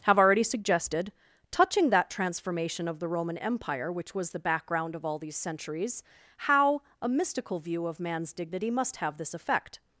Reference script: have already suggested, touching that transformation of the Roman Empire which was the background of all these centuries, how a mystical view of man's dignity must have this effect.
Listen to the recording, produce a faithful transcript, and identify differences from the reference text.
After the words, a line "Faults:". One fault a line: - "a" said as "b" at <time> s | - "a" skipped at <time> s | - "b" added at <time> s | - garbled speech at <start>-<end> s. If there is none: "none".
have already suggested, touching that transformation of the Roman Empire which was the background of all these centuries, how a mystical view of man's dignity must have this effect.
Faults:
none